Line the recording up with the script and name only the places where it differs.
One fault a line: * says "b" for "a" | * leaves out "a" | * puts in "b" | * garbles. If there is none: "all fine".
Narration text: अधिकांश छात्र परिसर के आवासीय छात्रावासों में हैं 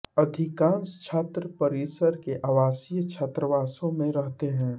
* puts in "रहते"